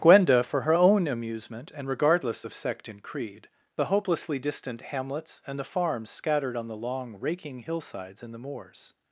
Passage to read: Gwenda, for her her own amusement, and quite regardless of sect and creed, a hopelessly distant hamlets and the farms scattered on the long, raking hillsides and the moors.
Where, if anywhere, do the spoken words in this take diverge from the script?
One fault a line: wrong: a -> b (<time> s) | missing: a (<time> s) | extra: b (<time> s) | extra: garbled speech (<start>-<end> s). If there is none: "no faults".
missing: her (0.7 s)
missing: quite (1.9 s)
wrong: a -> the (3.8 s)